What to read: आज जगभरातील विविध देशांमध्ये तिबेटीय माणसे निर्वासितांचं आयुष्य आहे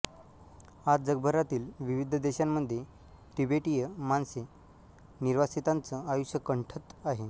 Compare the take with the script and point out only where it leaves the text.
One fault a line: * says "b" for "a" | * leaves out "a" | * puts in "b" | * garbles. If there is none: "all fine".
* puts in "कंठत"